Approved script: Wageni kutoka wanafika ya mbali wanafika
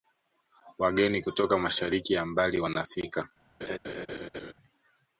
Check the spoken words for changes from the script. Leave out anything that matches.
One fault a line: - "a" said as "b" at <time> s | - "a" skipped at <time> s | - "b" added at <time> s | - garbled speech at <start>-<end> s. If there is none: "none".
- "wanafika" said as "mashariki" at 1.6 s